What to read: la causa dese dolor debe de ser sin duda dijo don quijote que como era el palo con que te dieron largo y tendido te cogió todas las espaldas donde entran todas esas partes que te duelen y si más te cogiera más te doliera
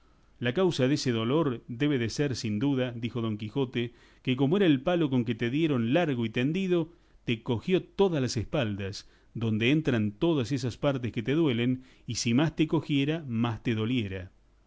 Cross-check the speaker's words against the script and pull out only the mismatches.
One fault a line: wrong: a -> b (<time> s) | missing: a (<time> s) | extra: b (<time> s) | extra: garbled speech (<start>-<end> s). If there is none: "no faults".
no faults